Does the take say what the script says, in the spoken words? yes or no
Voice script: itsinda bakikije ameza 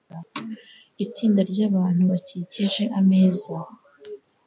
no